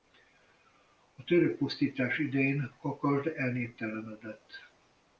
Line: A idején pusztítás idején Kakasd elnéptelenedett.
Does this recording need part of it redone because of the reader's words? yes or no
yes